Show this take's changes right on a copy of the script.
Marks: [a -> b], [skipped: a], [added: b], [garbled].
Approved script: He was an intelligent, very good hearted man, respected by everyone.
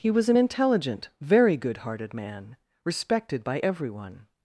He was an intelligent, very good hearted man, respected by everyone.